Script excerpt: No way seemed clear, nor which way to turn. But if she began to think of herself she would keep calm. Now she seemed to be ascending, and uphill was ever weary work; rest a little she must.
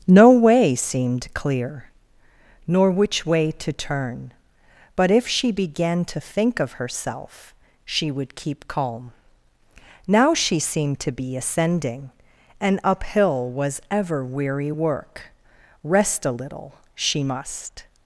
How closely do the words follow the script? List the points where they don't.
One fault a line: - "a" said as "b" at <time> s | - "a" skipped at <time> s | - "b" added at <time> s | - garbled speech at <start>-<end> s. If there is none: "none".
none